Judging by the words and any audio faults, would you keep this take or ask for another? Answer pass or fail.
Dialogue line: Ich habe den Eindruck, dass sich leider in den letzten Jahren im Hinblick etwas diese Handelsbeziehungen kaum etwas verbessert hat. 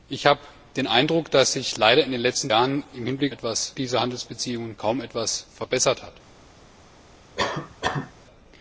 fail